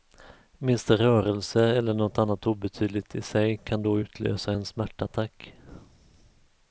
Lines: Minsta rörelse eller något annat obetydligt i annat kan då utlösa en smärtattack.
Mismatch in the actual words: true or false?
true